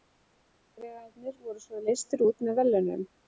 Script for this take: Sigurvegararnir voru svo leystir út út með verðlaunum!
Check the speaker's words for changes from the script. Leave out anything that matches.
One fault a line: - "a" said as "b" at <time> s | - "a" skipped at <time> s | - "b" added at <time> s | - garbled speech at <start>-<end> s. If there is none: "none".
- "út" skipped at 2.5 s